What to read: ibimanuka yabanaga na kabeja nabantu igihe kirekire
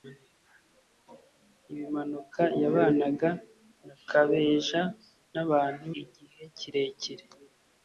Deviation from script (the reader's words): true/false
false